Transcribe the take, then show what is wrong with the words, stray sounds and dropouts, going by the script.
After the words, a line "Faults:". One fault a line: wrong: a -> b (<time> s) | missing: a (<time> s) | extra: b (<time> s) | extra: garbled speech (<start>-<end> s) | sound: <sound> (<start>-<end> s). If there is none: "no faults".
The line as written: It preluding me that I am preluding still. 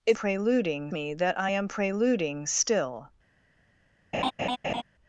It preluding me that I am preluding still.
Faults:
sound: laugh (4.1-4.8 s)